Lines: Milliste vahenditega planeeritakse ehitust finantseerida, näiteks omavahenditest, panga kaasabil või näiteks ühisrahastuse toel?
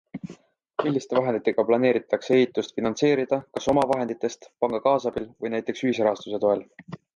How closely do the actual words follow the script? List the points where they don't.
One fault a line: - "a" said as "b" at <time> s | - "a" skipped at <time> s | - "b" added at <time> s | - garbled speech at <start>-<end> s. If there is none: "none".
- "näiteks" said as "kas" at 3.6 s